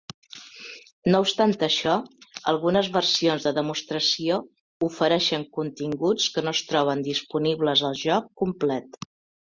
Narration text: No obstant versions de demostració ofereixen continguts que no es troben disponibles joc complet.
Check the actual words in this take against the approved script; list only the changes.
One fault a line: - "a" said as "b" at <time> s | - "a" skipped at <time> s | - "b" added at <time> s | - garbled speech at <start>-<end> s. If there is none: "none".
- "això algunes" added at 1.7 s
- "al" added at 7.9 s